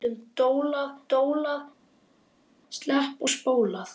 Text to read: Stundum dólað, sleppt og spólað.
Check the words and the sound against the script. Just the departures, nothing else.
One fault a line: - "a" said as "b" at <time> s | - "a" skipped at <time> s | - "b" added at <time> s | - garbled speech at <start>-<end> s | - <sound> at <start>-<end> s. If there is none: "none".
- "dólað" added at 1.1 s